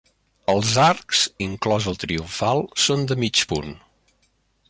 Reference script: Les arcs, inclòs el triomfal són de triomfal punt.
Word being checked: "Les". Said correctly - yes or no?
no